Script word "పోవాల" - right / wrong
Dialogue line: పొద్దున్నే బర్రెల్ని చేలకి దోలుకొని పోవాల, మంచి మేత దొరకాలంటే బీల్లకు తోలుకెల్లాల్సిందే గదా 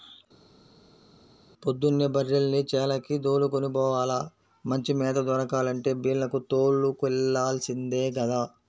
right